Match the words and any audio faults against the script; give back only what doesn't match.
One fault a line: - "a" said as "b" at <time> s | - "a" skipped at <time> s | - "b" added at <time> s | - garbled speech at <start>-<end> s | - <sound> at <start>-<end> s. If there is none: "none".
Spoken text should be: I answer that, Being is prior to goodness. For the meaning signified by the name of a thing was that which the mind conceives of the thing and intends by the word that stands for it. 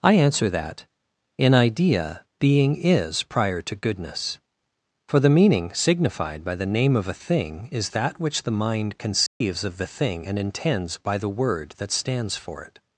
- "In idea" added at 1.4 s
- "was" said as "is" at 7.7 s
- dropout at 9.3-9.4 s